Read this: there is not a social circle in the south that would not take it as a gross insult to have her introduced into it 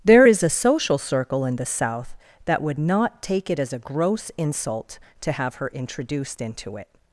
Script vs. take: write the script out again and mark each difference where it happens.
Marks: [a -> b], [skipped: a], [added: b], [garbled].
there is [skipped: not] a social circle in the south that would not take it as a gross insult to have her introduced into it